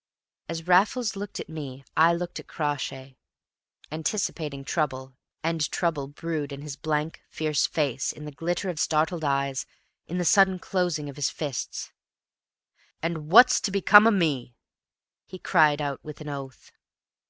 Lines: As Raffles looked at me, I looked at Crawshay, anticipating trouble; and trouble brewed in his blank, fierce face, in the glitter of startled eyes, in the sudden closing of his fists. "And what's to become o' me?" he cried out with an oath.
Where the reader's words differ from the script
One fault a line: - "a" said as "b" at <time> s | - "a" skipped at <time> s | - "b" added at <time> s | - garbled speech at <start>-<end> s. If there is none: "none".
none